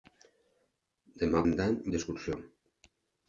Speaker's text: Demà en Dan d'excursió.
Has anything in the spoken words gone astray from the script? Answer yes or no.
no